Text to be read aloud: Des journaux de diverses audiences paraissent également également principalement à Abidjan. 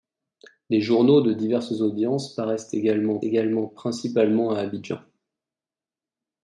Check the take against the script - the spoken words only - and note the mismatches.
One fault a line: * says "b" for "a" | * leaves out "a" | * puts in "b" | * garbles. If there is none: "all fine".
all fine